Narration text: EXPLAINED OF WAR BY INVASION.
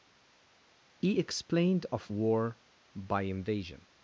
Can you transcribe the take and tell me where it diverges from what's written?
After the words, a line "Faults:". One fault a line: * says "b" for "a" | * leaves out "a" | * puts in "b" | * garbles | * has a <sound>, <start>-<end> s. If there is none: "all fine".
he EXPLAINED OF WAR BY INVASION.
Faults:
* puts in "he"